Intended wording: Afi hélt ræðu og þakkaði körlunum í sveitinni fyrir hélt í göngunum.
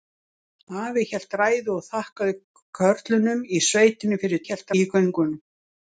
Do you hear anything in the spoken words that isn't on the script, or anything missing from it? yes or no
no